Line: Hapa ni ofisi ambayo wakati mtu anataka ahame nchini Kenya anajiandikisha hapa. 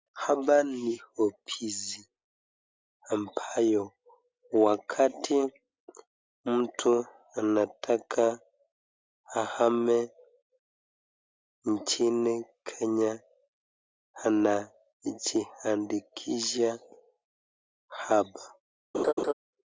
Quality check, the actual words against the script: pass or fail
pass